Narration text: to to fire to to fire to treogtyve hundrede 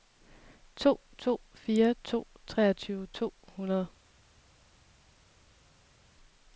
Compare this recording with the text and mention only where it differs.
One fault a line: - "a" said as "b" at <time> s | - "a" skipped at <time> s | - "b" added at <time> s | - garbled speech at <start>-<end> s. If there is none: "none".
- "to fire" said as "treogtyve" at 2.5 s
- "treogtyve" skipped at 3.3 s